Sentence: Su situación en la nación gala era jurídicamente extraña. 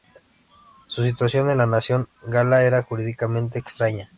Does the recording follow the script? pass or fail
pass